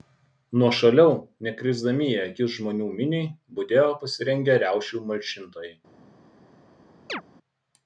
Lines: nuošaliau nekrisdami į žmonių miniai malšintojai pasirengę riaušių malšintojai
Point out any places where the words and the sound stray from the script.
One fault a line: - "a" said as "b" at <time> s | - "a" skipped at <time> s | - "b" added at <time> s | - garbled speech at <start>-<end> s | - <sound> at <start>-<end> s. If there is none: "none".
- "akis" added at 2.2 s
- "malšintojai" said as "budėjo" at 3.6 s
- chirp at 7.1-7.2 s